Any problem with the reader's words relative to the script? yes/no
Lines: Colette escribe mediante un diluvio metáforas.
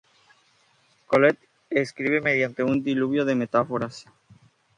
yes